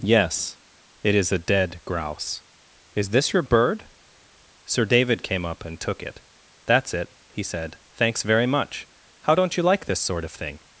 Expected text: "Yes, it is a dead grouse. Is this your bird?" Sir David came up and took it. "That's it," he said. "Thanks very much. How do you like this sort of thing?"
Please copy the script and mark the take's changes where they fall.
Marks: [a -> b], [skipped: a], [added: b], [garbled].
"Yes, it is a dead grouse. Is this your bird?" Sir David came up and took it. "That's it," he said. "Thanks very much. How [do -> don't] you like this sort of thing?"